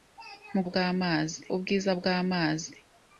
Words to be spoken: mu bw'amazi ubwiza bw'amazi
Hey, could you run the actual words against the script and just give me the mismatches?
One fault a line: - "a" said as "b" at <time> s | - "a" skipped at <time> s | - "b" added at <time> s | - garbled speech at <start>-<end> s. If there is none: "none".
none